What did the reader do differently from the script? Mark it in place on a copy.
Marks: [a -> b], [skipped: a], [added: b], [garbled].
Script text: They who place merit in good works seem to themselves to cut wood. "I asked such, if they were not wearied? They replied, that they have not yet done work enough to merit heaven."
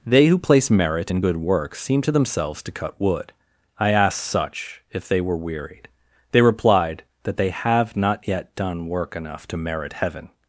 They who place merit in good works seem to themselves to cut wood. "I asked such, if they were [skipped: not] wearied? They replied, that they have not yet done work enough to merit heaven."